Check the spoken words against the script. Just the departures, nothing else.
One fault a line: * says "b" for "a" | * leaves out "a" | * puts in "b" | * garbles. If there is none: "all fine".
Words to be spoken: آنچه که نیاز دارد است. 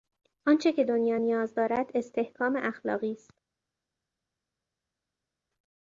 * puts in "دنیا"
* puts in "استحکام اخلاقی"